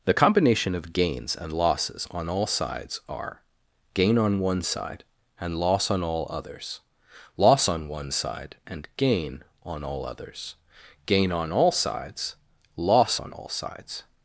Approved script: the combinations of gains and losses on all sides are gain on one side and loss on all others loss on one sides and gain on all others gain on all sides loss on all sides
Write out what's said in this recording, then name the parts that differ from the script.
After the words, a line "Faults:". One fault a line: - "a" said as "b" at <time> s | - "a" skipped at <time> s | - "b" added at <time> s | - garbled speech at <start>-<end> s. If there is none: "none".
the combination of gains and losses on all sides are gain on one side and loss on all others loss on one side and gain on all others gain on all sides loss on all sides
Faults:
- "combinations" said as "combination" at 0.1 s
- "sides" said as "side" at 8.1 s